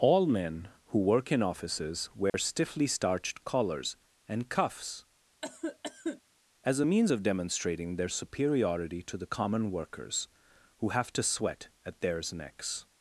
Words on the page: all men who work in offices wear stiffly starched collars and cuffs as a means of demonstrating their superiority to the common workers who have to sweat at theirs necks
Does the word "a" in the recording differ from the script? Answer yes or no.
no